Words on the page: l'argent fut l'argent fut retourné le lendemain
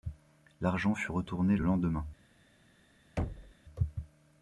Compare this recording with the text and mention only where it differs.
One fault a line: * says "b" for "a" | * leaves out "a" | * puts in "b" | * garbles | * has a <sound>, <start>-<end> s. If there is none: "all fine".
* leaves out "l'argent fut"
* has a thud, 3.2-3.5 s